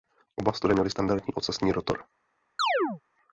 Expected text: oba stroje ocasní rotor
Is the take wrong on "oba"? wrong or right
right